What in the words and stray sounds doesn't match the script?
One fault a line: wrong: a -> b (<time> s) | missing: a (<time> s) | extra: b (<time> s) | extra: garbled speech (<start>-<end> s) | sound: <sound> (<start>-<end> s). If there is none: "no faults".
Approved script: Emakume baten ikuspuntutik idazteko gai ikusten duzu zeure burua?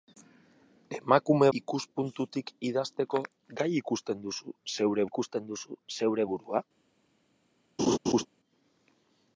missing: baten (1.5 s)
extra: ikusten duzu zeure (5.1 s)
sound: laugh (7.8-8.3 s)